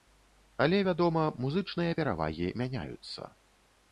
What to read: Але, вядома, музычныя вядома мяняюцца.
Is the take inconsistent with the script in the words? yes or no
yes